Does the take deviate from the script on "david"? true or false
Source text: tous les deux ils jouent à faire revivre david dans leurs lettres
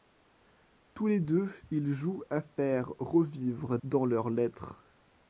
true